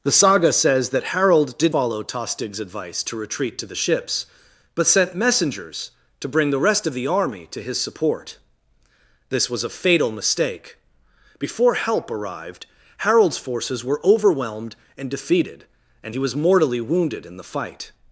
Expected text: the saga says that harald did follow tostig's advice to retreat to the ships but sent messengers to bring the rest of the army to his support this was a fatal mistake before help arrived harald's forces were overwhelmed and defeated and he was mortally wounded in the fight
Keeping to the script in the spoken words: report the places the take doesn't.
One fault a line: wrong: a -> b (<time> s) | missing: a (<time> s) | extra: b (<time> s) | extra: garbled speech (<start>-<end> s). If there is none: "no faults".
no faults